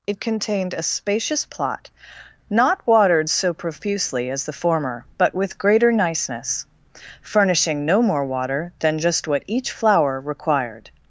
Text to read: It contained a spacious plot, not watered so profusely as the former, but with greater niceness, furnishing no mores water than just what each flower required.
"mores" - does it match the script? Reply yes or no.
no